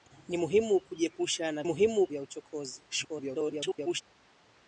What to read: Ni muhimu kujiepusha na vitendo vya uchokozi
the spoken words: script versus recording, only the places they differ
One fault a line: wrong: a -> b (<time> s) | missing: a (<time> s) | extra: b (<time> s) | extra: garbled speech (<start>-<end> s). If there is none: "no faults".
wrong: vitendo -> muhimu (1.6 s)
extra: garbled speech (2.9-4.0 s)